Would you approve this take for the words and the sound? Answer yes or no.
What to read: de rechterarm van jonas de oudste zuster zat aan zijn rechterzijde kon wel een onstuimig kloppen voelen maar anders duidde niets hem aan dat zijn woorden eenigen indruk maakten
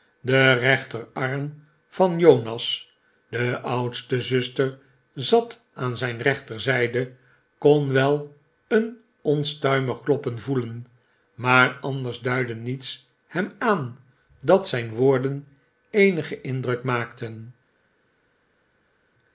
yes